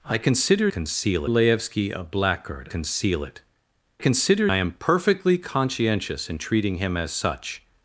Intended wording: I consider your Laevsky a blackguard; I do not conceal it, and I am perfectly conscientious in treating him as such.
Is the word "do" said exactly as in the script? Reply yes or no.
no